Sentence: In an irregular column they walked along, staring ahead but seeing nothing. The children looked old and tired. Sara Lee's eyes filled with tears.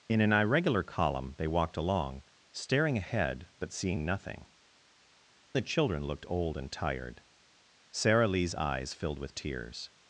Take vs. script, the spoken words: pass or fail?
pass